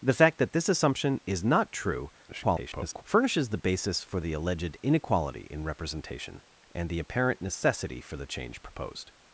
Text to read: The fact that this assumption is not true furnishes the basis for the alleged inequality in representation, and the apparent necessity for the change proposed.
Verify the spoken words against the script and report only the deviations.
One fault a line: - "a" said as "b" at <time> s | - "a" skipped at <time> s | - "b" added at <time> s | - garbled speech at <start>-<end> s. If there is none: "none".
- garbled speech at 2.3-3.0 s